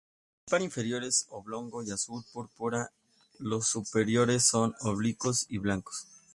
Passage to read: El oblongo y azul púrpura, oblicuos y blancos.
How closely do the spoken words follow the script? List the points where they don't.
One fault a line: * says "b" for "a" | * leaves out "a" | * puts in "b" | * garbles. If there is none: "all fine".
* puts in "par inferior es"
* puts in "los superiores son"